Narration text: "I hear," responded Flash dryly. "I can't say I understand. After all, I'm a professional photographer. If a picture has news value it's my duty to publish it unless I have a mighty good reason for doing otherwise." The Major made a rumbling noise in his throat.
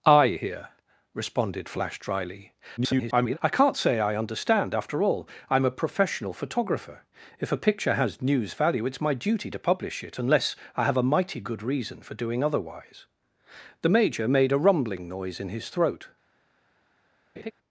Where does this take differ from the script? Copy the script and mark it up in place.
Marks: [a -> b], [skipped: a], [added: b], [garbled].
"I hear," responded Flash dryly. [garbled] "I can't say I understand. After all, I'm a professional photographer. If a picture has news value it's my duty to publish it unless I have a mighty good reason for doing otherwise." The Major made a rumbling noise in his throat.